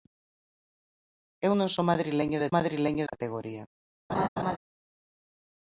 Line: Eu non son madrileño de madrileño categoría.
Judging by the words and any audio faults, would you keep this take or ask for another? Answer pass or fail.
fail